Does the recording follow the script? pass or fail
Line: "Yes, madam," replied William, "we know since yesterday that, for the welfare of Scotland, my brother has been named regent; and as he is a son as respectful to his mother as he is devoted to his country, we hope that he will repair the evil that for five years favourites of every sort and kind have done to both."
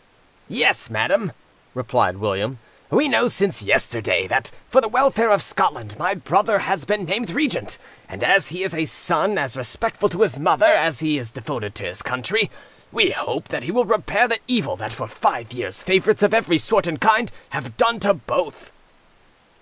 pass